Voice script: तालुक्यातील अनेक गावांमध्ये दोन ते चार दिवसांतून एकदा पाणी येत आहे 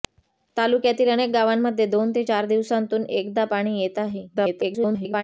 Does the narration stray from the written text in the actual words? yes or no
yes